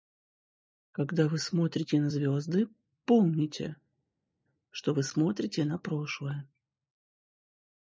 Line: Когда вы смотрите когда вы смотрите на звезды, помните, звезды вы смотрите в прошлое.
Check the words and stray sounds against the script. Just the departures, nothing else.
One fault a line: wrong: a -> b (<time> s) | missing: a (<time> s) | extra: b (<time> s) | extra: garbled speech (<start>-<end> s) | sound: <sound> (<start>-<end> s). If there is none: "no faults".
missing: когда вы смотрите (2.0 s)
wrong: звезды -> что (4.7 s)
wrong: в -> на (5.6 s)